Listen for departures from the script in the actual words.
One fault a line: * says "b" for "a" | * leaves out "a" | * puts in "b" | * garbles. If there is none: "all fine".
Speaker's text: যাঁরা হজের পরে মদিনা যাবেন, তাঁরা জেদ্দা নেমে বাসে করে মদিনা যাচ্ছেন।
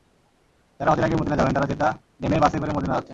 * says "আগে" for "পরে"